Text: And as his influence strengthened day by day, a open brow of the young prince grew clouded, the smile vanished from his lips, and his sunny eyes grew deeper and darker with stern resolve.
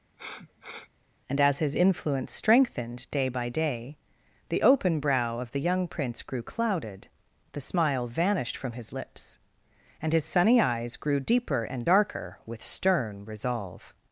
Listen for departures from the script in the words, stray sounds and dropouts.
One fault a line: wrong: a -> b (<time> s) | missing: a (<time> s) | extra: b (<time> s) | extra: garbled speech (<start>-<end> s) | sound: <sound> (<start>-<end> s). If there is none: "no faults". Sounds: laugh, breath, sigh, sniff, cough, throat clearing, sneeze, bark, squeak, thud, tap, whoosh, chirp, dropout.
sound: sniff (0.2-0.9 s)
wrong: a -> the (4.5 s)